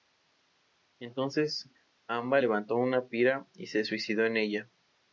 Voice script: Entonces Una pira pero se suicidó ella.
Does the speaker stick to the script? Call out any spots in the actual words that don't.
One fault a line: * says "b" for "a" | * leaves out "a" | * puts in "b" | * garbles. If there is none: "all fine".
* puts in "Amba levantó"
* says "y" for "pero"
* puts in "en"